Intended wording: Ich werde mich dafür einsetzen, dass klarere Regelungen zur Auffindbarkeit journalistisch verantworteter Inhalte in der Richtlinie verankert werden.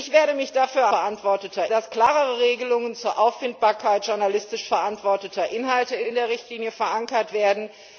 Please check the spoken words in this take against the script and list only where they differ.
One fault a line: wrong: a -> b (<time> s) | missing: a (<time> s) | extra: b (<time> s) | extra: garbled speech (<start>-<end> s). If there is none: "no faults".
wrong: einsetzen -> verantworteter (0.9 s)
extra: in (6.0 s)